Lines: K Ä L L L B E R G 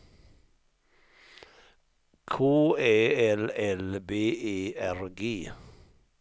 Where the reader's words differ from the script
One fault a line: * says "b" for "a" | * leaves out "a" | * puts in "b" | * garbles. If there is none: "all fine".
* leaves out "L"